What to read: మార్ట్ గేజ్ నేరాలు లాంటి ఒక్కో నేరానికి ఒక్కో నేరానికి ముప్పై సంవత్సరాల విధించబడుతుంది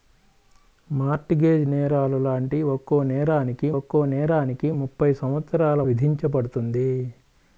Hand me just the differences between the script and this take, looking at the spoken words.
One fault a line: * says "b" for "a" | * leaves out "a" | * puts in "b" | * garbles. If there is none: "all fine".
all fine